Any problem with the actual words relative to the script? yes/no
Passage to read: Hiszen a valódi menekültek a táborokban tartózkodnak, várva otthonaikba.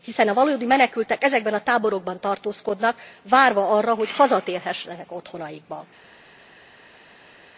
yes